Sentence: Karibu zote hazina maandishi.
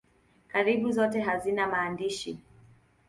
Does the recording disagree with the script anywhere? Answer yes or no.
no